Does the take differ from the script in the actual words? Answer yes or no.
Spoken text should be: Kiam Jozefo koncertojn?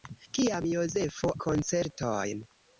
no